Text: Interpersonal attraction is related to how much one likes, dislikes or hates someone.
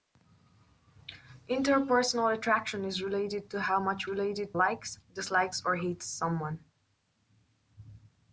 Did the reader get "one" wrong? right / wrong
wrong